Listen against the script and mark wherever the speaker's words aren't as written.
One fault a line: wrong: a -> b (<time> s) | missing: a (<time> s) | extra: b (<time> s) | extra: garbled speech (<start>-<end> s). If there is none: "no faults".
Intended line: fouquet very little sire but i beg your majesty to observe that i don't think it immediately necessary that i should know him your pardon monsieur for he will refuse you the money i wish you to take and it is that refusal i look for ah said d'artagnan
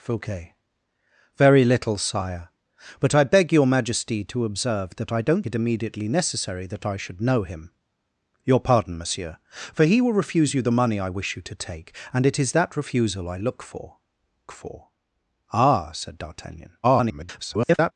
missing: think (5.5 s)
extra: for (14.5 s)
extra: garbled speech (16.8-17.9 s)